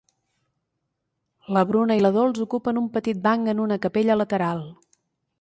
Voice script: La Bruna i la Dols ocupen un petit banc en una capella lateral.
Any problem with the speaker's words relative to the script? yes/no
no